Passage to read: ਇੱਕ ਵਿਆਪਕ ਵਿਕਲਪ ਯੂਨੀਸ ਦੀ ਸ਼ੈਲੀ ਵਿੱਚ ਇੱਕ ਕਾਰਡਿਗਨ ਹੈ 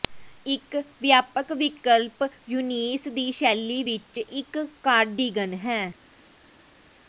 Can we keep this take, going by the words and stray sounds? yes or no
yes